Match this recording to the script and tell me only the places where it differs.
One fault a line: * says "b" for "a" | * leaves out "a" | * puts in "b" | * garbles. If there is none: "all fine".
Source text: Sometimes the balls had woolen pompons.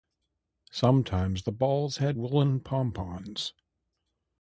all fine